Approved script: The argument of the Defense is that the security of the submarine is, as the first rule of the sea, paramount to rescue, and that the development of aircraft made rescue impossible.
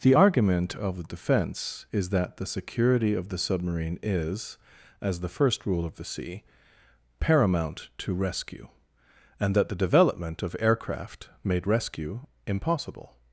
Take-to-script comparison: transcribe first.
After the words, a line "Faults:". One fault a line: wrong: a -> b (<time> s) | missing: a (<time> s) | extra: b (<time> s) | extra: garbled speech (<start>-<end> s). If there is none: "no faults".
The argument of the Defense is that the security of the submarine is, as the first rule of the sea, paramount to rescue, and that the development of aircraft made rescue impossible.
Faults:
no faults